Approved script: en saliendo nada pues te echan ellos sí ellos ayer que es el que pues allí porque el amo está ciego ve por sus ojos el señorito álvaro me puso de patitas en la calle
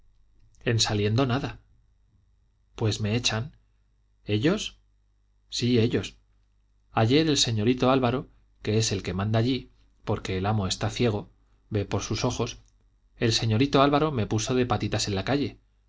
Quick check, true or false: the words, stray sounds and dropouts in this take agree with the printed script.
false